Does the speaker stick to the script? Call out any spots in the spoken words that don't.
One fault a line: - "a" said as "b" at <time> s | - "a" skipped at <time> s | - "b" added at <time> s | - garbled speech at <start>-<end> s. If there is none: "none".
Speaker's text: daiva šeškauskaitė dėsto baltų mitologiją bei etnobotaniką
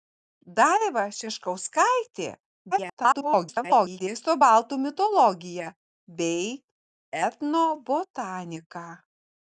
- garbled speech at 2.7-4.0 s